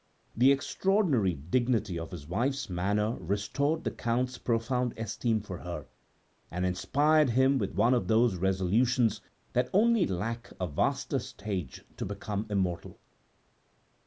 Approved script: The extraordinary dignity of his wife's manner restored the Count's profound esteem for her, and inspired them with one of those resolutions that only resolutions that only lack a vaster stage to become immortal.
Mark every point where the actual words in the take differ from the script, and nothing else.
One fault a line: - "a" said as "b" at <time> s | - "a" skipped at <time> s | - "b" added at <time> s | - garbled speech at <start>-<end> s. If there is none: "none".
- "them" said as "him" at 7.3 s
- "resolutions that only" skipped at 10.1 s